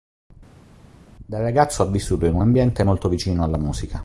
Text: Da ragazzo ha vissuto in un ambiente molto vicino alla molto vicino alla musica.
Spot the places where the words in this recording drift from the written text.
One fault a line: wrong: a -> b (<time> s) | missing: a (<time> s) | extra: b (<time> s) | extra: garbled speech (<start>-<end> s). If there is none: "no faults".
missing: molto vicino alla (3.6 s)